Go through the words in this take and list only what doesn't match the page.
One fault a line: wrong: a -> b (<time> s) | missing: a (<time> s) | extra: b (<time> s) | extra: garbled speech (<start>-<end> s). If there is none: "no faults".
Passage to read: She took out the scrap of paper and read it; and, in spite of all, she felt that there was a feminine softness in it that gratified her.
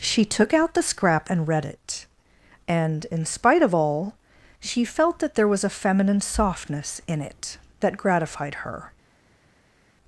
missing: of paper (1.3 s)